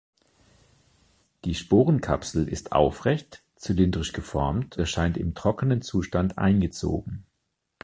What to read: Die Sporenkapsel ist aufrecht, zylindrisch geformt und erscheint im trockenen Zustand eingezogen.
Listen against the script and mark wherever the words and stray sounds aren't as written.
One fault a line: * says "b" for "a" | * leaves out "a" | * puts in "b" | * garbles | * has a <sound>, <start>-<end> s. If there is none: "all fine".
* leaves out "und"